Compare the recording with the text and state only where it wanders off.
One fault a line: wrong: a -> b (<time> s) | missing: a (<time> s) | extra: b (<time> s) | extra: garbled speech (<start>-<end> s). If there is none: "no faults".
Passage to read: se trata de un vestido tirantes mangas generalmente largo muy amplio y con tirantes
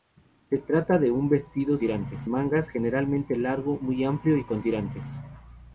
no faults